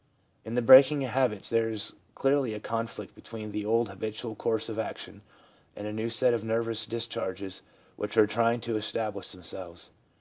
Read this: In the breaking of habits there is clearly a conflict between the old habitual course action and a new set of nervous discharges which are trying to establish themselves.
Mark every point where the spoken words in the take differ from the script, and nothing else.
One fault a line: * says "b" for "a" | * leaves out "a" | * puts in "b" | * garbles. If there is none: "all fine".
* puts in "of"